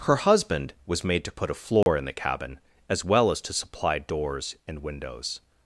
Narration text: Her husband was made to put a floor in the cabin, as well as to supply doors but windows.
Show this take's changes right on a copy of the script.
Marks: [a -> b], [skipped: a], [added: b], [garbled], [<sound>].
Her husband was made to put a floor [dropout] in the cabin, as well as to supply doors [but -> and] windows.